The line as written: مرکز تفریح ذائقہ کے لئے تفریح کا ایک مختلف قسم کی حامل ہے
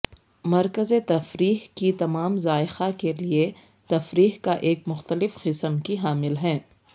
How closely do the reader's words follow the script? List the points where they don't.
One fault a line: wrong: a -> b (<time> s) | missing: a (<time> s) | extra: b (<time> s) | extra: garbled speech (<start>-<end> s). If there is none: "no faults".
extra: کی تمام (1.7 s)